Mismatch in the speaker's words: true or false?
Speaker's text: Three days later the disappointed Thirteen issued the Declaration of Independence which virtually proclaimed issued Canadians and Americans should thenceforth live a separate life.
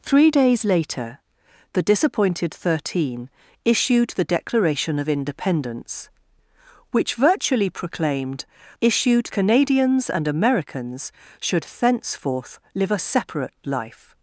false